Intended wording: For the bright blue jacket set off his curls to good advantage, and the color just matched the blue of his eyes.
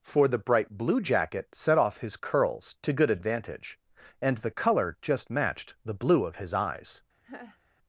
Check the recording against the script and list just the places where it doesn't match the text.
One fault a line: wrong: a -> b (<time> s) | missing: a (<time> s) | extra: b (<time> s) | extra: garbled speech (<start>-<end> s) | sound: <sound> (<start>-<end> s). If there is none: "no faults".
sound: laugh (7.2-7.6 s)